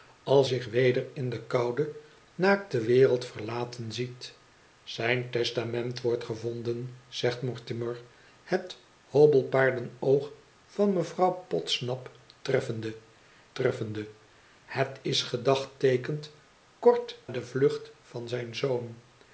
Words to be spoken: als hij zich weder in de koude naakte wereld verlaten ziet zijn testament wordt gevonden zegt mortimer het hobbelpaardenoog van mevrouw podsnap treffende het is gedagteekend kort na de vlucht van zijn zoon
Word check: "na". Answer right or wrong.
wrong